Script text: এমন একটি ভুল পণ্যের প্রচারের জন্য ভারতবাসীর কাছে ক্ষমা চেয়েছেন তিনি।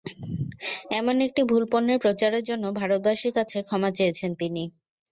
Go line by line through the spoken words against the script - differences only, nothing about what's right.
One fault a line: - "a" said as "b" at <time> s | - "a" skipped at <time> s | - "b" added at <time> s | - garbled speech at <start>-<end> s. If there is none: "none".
none